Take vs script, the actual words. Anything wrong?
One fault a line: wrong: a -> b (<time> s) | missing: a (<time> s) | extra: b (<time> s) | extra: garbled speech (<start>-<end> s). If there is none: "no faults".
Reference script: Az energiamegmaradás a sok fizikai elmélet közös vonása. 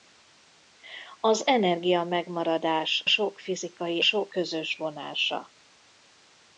missing: a (3.0 s)
wrong: elmélet -> sok (4.0 s)